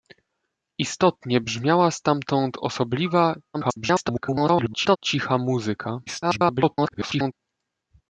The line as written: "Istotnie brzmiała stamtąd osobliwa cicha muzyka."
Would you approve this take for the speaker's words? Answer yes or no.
no